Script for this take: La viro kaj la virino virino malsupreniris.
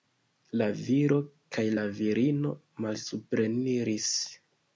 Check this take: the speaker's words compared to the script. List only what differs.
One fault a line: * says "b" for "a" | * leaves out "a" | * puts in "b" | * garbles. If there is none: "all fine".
* leaves out "virino"